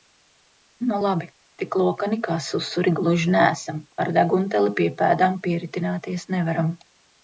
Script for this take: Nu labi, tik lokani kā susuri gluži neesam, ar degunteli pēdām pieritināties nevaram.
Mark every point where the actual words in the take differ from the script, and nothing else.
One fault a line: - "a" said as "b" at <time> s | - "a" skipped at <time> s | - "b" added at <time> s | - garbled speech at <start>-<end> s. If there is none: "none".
- "pie" added at 4.8 s